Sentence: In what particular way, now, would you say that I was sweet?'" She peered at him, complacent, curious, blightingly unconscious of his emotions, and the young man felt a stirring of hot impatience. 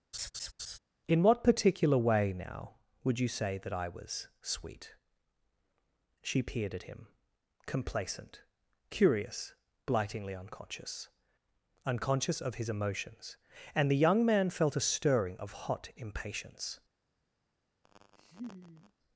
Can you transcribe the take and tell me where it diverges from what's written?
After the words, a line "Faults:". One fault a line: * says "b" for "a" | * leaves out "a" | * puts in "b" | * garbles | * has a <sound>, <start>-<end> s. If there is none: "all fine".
In what particular way, now, would you say that I was sweet?'" She peered at him, complacent, curious, blightingly unconscious unconscious of his emotions, and the young man felt a stirring of hot impatience.
Faults:
* has a laugh, 0.1-0.8 s
* puts in "unconscious"
* has a laugh, 17.8-18.9 s